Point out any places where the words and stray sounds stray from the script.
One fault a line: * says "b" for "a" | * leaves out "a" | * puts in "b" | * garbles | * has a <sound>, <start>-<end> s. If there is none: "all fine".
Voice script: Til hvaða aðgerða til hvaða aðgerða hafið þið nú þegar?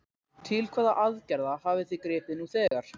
* leaves out "til hvaða aðgerða"
* puts in "gripið"
* has a dropout, 2.7-2.7 s